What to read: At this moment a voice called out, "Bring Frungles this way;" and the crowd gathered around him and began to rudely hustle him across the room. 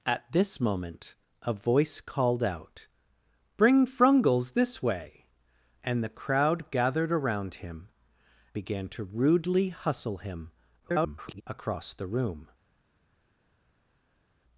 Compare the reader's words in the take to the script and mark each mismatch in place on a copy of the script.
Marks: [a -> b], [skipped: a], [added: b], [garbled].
At this moment a voice called out, "Bring Frungles this way;" and the crowd gathered around him [skipped: and] began to rudely hustle him [garbled] across the room.